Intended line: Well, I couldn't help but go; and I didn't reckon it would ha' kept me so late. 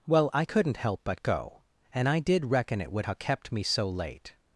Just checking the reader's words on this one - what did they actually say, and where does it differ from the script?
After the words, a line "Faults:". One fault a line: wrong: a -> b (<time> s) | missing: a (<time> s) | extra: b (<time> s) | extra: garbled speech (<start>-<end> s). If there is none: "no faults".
Well, I couldn't help but go; and I did reckon it would ha' kept me so late.
Faults:
wrong: didn't -> did (2.2 s)